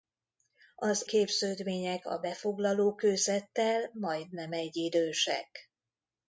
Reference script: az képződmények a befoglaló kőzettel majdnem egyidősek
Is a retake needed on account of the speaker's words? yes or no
no